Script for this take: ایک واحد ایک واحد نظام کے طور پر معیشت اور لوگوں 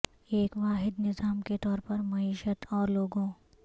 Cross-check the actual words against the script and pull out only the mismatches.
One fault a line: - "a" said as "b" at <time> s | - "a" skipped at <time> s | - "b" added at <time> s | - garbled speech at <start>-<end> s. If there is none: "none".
- "ایک واحد" skipped at 1.0 s